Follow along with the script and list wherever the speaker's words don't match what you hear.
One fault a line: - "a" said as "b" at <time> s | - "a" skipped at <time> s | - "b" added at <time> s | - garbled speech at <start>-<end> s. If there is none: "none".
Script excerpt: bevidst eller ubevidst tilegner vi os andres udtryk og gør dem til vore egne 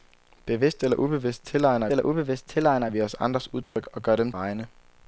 - "eller ubevidst tilegner" added at 1.9 s
- "til vore" skipped at 4.3 s